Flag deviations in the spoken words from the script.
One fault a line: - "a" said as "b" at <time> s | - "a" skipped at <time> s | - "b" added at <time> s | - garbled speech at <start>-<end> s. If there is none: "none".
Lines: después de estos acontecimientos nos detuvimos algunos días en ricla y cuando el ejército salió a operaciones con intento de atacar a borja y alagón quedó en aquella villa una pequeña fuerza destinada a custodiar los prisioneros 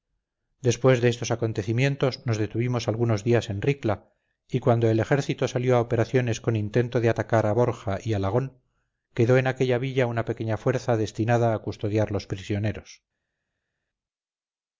none